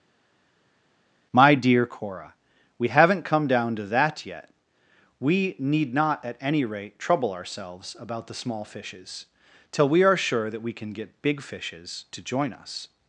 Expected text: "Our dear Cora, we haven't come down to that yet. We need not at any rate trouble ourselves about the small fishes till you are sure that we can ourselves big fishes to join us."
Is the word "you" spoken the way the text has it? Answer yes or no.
no